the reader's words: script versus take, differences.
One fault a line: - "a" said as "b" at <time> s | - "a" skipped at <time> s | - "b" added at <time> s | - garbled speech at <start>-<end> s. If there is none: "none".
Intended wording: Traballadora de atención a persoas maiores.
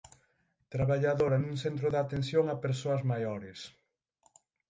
- "nun centro" added at 1.4 s